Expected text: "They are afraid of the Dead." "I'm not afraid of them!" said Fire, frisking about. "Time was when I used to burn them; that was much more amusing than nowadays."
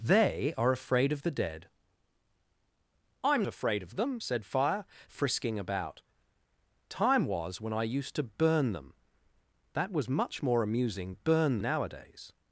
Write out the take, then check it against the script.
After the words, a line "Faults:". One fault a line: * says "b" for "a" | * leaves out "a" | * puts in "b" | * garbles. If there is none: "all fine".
"They are afraid of the Dead." "I'm afraid of them!" said Fire, frisking about. "Time was when I used to burn them; that was much more amusing burn nowadays."
Faults:
* leaves out "not"
* says "burn" for "than"